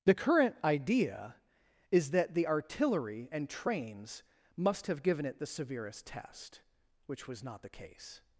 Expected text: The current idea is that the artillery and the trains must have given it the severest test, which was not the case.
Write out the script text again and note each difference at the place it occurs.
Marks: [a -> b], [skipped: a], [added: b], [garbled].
The current idea is that the artillery and [skipped: the] trains must have given it the severest test, which was not the case.